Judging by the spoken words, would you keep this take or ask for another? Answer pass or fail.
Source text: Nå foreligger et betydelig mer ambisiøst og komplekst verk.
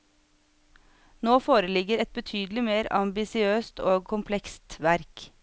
pass